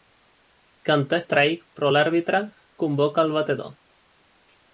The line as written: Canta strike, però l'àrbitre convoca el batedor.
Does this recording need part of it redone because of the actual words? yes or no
no